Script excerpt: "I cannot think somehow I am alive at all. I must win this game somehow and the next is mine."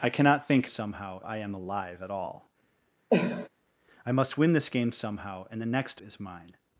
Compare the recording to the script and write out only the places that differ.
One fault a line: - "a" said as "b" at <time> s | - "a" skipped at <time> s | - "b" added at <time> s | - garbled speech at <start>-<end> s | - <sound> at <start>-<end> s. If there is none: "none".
- cough at 3.1-3.5 s